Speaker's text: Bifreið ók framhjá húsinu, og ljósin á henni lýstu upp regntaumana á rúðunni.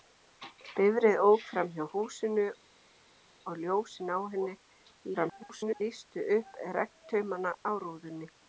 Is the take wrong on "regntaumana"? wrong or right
right